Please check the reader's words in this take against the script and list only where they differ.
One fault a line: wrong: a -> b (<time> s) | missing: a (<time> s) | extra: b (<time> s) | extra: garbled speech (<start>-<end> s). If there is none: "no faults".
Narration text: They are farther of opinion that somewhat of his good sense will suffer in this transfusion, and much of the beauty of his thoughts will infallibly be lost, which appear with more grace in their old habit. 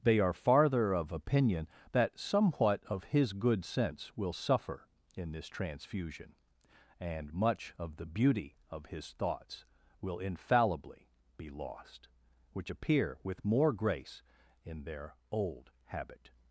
no faults